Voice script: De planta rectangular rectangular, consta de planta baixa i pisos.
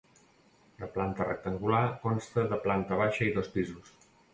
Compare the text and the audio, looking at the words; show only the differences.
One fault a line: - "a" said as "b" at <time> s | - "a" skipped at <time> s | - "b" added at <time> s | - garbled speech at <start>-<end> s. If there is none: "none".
- "rectangular" skipped at 1.9 s
- "dos" added at 3.4 s